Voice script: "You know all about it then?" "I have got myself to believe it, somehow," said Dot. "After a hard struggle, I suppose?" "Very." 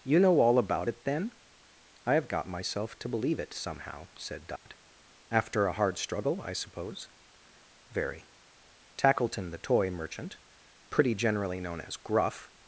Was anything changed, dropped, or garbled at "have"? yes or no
no